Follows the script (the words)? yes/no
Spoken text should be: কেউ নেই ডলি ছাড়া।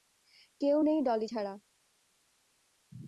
yes